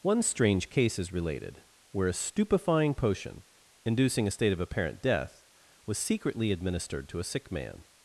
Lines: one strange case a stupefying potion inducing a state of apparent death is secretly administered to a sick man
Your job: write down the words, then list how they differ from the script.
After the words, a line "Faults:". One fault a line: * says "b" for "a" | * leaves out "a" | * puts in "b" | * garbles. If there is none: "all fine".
one strange case is related where a stupefying potion inducing a state of apparent death was secretly administered to a sick man
Faults:
* puts in "is related where"
* says "was" for "is"